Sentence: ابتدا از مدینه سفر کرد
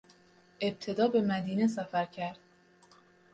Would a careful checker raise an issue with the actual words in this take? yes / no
yes